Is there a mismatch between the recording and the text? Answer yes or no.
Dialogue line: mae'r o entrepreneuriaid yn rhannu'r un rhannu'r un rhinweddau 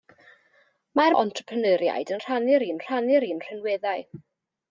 no